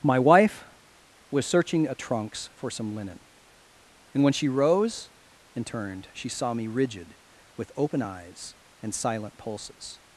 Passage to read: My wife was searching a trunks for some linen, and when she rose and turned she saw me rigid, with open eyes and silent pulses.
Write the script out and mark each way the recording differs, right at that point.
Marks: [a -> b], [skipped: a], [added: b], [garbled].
My wife was searching a trunks for some linen, and when she rose and turned she saw me rigid, with open eyes and silent pulses.